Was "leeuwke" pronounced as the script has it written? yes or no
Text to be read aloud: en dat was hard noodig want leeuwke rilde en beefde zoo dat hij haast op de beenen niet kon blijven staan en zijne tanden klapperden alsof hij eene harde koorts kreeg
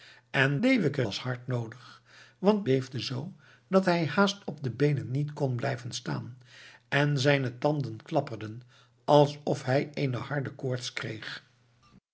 no